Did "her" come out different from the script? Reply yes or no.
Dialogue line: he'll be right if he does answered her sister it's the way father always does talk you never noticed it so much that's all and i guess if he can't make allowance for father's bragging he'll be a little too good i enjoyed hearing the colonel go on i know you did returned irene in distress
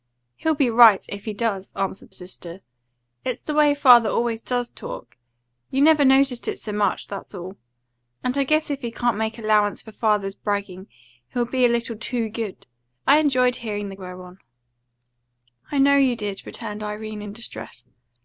yes